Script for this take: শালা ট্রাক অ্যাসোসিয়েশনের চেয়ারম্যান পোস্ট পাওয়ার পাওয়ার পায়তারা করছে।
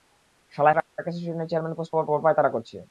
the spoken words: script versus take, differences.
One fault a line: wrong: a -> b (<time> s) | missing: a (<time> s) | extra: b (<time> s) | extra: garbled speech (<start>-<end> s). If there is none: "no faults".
no faults